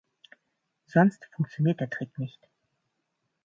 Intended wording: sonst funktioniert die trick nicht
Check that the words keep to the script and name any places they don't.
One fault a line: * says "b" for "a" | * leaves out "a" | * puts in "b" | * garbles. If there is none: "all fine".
* says "der" for "die"